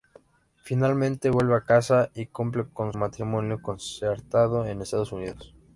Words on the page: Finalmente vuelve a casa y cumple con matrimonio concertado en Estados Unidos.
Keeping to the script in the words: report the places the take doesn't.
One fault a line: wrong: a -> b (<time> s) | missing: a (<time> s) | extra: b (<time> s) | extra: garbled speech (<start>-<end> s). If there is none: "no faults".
no faults